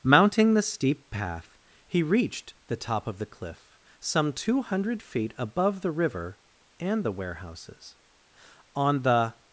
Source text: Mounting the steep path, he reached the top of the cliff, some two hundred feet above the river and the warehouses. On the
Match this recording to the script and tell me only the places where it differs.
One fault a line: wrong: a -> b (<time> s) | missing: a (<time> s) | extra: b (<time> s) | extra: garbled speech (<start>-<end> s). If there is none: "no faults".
no faults